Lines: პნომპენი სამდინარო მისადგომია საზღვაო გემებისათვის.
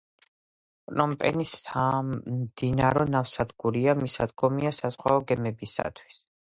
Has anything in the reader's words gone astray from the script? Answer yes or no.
yes